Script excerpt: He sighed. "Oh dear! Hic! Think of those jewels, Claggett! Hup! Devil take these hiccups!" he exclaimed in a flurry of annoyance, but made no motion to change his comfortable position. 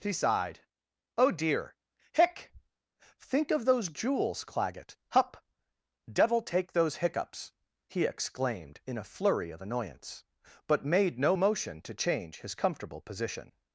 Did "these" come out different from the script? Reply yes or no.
yes